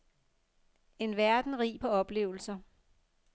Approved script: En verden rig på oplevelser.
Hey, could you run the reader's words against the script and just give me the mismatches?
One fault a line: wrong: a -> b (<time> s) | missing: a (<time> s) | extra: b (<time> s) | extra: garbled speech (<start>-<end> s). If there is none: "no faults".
no faults